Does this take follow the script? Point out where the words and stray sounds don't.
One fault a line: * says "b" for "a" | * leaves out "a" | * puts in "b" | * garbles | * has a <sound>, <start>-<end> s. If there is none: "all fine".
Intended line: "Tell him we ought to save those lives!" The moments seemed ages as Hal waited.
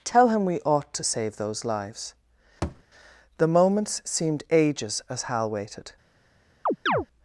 * has a thud, 2.6-2.8 s
* has a chirp, 6.7-7.1 s